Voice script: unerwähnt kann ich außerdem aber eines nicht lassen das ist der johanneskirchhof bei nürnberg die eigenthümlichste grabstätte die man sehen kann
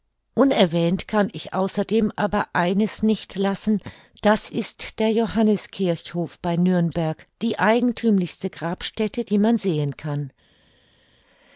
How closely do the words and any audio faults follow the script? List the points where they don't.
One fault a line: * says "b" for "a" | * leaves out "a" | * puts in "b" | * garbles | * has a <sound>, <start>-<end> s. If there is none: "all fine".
all fine